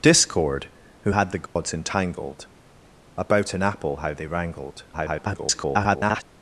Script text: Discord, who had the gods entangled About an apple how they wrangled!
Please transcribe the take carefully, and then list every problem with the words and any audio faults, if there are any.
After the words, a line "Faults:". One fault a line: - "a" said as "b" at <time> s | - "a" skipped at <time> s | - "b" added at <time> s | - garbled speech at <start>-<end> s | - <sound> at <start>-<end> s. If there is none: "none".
Discord, who had the gods entangled About an apple how they wrangled! [garbled]
Faults:
- dropout at 1.5-1.6 s
- garbled speech at 4.9-6.2 s